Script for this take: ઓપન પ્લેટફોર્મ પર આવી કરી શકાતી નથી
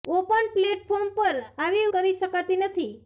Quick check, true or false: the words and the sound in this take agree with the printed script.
true